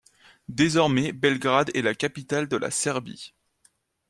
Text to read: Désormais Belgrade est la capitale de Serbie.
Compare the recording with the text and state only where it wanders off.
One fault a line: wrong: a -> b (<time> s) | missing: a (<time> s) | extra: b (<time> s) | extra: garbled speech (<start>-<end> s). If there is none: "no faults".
extra: la (2.6 s)